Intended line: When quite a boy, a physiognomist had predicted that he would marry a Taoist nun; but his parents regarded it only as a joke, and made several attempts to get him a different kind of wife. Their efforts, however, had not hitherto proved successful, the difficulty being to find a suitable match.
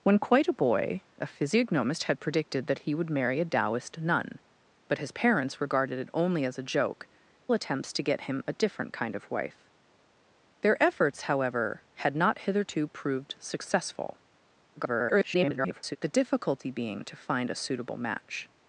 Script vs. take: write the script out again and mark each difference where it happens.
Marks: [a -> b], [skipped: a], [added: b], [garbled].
When quite a boy, a physiognomist had predicted that he would marry a Taoist nun; but his parents regarded it only as a joke, [skipped: and made several] attempts to get him a different kind of wife. Their efforts, however, had not hitherto proved successful, [garbled] the difficulty being to find a suitable match.